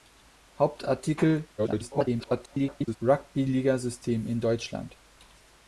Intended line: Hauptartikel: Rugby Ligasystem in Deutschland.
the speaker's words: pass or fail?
fail